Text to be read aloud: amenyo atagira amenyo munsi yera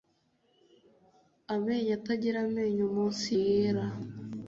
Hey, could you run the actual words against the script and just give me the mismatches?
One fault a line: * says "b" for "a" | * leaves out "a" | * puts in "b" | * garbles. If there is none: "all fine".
all fine